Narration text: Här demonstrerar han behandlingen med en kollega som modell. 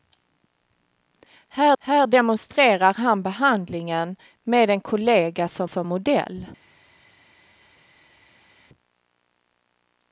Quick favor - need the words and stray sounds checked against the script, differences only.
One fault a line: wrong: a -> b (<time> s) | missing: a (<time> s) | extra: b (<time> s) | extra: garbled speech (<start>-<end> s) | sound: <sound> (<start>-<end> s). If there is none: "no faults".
extra: här (1.8 s)
extra: som (5.6 s)